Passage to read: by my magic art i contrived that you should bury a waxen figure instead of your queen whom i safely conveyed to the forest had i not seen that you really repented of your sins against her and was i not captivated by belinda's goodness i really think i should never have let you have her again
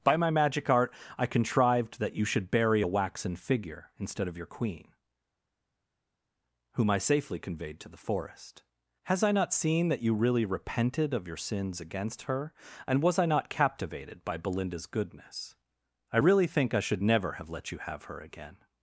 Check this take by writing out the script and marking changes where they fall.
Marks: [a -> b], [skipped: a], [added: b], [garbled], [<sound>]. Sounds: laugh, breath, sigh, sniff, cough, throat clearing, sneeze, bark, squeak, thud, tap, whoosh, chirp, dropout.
by my magic art i contrived that you should bury a waxen figure instead of your queen whom i safely conveyed to the forest [had -> has] i not seen that you really repented of your sins against her and was i not captivated by belinda's goodness i really think i should never have let you have her again